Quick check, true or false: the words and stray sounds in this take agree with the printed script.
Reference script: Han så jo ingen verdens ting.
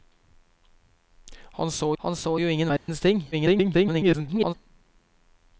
false